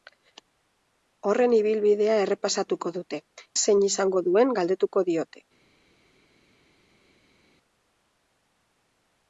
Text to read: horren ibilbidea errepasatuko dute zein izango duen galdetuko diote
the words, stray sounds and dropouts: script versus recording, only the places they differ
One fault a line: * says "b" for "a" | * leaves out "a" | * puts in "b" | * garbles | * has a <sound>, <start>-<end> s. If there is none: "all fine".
all fine